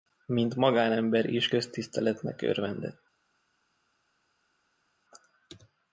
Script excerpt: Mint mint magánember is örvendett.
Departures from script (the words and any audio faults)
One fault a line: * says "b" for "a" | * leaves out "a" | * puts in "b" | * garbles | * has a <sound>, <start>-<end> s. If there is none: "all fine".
* leaves out "mint"
* puts in "köztiszteletnek"